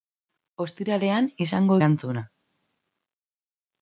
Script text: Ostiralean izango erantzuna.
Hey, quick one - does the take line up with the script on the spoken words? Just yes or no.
yes